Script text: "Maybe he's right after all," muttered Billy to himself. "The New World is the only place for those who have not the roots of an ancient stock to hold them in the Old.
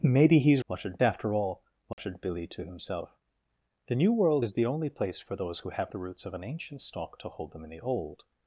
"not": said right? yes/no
no